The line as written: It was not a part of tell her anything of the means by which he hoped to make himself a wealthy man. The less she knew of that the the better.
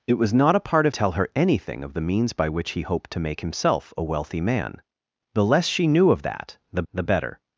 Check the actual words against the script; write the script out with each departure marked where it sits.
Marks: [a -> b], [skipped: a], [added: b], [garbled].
It was not a part of tell her anything of the means by which he hoped to make himself a wealthy man. The less she knew of that the the better.